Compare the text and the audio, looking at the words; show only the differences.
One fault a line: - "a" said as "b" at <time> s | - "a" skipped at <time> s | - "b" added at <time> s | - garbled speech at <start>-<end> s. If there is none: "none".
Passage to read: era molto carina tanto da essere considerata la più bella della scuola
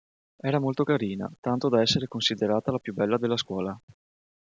none